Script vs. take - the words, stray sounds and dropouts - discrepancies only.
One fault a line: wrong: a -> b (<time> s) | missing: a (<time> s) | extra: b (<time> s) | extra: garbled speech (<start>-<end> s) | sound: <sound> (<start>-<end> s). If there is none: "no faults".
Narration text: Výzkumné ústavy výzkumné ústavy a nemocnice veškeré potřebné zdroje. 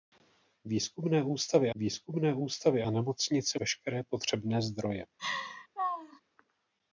sound: laugh (5.2-6.2 s)